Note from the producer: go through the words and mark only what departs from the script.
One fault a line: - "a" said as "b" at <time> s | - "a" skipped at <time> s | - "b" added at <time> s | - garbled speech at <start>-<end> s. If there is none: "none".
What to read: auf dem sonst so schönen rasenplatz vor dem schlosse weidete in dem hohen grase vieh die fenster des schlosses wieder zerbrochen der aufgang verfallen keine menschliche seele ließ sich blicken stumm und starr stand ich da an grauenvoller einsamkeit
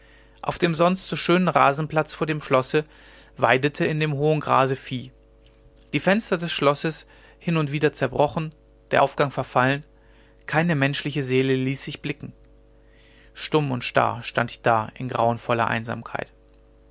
- "hin und" added at 7.4 s
- "an" said as "in" at 14.9 s